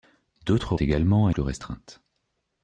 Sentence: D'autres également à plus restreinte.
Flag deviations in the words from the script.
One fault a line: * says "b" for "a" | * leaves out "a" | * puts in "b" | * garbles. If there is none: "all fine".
all fine